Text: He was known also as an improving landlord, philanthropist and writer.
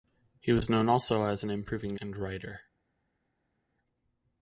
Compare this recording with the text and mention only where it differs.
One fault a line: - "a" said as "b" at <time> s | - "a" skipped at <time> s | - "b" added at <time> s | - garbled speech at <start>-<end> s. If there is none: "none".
- "landlord philanthropist" skipped at 1.9 s